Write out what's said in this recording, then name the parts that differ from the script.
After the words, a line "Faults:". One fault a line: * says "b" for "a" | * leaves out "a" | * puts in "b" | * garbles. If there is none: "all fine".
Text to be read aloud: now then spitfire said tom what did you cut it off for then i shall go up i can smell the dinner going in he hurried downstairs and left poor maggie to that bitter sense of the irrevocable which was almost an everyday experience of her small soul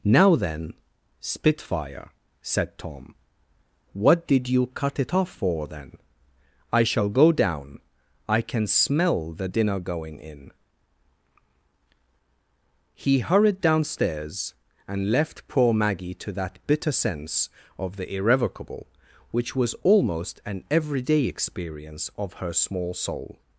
now then spitfire said tom what did you cut it off for then i shall go down i can smell the dinner going in he hurried downstairs and left poor maggie to that bitter sense of the irrevocable which was almost an everyday experience of her small soul
Faults:
* says "down" for "up"